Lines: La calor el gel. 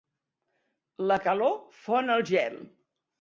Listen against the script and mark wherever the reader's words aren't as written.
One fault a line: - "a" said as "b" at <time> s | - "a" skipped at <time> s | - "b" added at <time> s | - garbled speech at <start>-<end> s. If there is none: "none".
- "fon" added at 1.8 s